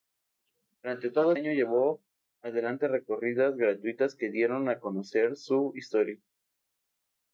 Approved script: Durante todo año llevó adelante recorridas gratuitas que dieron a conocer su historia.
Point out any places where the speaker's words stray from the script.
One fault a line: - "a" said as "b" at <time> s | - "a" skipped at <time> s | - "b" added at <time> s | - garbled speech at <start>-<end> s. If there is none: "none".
none